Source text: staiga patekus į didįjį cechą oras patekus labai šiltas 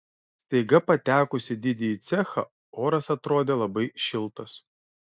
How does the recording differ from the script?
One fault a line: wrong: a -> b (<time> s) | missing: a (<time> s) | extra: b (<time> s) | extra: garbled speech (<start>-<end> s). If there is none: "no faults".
wrong: patekus -> atrodė (3.2 s)